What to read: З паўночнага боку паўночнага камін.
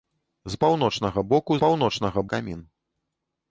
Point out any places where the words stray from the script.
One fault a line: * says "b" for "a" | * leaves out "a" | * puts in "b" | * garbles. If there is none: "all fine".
all fine